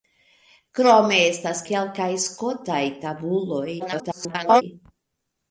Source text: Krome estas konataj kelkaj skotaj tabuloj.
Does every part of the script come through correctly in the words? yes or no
no